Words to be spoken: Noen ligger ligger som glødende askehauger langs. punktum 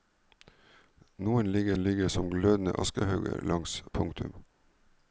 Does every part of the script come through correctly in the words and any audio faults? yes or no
yes